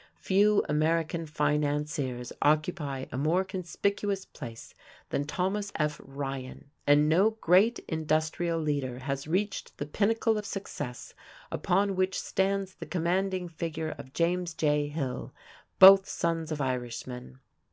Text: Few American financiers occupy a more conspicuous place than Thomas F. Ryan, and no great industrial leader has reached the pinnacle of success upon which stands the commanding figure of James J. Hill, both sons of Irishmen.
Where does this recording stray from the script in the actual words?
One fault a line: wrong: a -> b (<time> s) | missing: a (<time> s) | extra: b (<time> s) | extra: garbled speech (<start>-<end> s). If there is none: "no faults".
no faults